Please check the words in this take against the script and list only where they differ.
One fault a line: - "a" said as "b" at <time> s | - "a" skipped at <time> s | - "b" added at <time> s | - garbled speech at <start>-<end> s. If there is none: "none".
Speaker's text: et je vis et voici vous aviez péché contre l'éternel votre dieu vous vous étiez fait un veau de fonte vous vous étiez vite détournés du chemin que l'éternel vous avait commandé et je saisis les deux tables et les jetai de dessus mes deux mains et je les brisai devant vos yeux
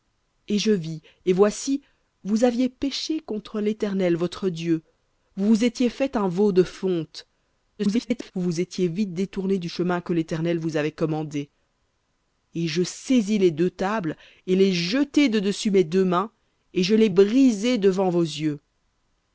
- garbled speech at 7.8-8.3 s